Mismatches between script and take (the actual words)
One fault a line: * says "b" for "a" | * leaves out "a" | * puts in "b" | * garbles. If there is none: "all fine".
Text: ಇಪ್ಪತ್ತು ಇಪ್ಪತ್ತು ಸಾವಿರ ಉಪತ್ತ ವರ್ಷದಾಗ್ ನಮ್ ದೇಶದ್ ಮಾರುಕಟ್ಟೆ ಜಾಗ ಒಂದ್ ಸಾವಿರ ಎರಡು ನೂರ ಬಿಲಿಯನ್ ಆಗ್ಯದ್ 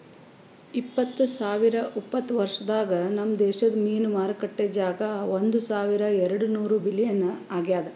* leaves out "ಇಪ್ಪತ್ತು"
* puts in "ಮೀನು"